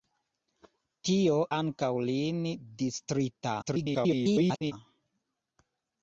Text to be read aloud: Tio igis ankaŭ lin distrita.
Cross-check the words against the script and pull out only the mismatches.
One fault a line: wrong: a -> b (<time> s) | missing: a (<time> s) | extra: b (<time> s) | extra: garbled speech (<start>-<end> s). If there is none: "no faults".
missing: igis (1.4 s)
extra: garbled speech (3.6-4.7 s)